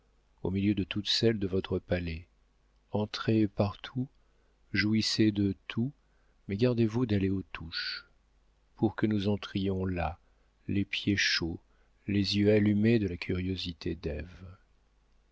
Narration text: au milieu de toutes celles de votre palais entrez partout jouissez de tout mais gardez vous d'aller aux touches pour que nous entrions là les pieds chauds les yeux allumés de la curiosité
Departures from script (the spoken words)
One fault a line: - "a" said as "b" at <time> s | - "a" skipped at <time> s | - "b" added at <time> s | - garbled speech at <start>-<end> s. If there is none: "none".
none